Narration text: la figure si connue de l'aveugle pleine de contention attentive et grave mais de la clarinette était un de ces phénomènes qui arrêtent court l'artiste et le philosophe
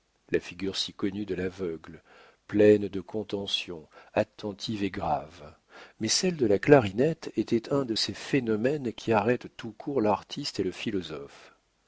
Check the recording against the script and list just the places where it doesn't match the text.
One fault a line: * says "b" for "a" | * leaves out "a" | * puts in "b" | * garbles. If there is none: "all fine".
* puts in "celle"
* puts in "tout"